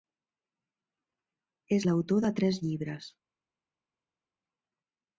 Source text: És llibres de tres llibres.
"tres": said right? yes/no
yes